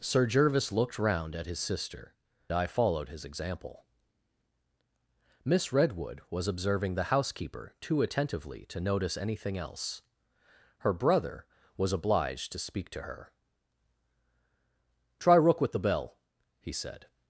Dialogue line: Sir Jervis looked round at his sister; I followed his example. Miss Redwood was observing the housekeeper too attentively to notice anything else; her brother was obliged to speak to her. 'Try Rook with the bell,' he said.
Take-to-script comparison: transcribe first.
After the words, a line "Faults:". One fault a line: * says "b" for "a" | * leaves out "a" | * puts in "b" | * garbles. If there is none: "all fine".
Sir Jervis looked round at his sister; I followed his example. Miss Redwood was observing the housekeeper too attentively to notice anything else; her brother was obliged to speak to her. 'Try Rook with the bell,' he said.
Faults:
all fine